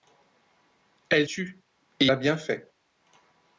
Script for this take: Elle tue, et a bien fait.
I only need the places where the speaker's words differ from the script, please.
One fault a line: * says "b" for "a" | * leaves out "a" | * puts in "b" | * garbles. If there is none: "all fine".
all fine